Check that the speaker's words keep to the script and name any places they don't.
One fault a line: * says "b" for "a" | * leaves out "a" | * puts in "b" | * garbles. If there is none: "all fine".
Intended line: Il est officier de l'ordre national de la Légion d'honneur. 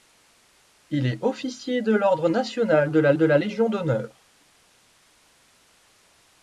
* puts in "de la"